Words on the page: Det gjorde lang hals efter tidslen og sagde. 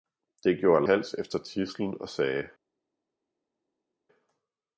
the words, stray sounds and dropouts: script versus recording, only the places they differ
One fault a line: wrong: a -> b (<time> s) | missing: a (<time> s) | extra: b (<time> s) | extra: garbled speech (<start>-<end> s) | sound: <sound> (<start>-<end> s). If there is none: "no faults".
missing: lang (0.8 s)